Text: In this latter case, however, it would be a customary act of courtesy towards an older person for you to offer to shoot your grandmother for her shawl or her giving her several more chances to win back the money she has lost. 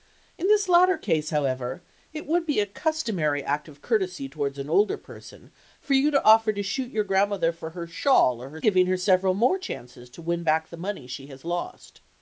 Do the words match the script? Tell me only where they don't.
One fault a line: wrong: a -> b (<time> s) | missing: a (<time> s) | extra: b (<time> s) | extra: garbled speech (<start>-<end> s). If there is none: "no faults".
no faults